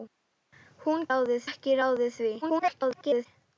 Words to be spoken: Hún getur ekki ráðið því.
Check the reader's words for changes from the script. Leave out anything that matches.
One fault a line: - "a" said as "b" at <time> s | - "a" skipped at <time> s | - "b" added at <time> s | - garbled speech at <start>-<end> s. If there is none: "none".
- "getur" said as "ráðið" at 1.1 s
- garbled speech at 2.4-3.3 s